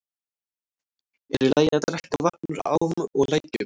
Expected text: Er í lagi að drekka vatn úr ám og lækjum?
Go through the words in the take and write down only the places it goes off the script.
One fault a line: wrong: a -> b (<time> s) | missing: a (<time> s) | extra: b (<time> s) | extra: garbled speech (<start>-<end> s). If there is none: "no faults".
no faults